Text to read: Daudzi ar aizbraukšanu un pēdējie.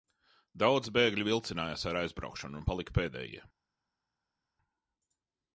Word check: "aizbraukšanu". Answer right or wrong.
right